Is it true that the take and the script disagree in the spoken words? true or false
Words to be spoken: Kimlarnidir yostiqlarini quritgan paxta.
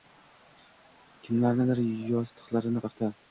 true